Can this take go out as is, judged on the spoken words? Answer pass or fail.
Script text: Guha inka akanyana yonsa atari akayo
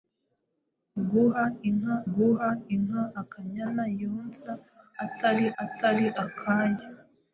fail